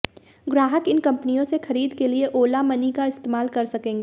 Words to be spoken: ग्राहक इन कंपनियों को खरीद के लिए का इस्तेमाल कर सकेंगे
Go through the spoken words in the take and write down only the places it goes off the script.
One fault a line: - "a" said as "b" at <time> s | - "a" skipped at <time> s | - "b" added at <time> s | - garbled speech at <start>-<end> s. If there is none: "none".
- "को" said as "से" at 1.4 s
- "ओला मनी" added at 2.4 s